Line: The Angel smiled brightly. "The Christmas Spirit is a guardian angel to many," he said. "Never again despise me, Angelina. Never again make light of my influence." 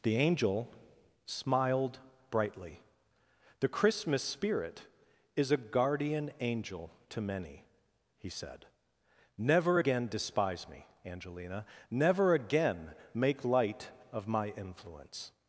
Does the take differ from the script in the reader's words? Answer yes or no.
no